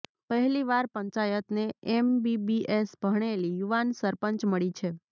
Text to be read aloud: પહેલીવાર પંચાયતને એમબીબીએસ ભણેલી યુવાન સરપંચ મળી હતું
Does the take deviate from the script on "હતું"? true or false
true